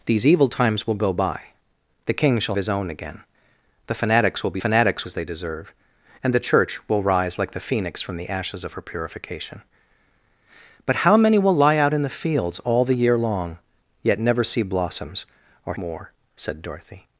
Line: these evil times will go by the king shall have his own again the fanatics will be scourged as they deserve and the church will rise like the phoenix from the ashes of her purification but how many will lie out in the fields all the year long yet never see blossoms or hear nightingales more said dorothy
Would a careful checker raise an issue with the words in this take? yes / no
yes